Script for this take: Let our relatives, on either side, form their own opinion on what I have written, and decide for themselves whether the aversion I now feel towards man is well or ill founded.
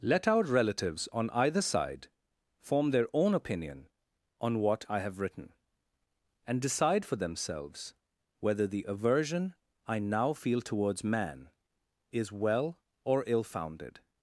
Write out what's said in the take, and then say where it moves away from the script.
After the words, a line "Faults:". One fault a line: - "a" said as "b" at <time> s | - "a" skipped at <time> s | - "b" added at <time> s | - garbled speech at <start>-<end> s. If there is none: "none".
Let our relatives, on either side, form their own opinion on what I have written, and decide for themselves whether the aversion I now feel towards man is well or ill founded.
Faults:
none